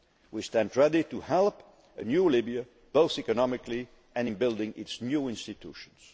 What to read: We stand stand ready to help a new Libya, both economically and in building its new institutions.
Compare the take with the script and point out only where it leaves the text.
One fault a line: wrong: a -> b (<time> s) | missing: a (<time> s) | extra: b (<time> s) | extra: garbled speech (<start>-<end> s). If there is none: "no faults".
missing: stand (0.8 s)